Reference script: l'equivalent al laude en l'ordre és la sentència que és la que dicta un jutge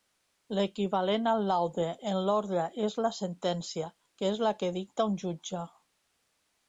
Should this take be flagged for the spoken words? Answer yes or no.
no